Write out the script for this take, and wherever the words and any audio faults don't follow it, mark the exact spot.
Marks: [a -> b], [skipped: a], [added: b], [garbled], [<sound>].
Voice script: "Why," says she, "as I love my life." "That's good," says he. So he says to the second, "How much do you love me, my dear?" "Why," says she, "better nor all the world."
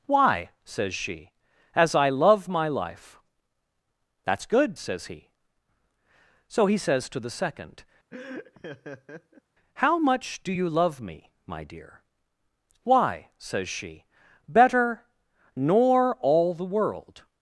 "Why," says she, "as I love my life." "That's good," says he. So he says to the second, [laugh] "How much do you love me, my dear?" "Why," says she, "better nor all the world."